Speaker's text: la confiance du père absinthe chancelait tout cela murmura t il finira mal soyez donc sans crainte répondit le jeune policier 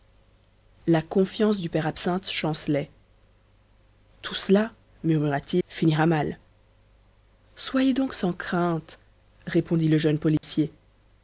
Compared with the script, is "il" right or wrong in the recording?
wrong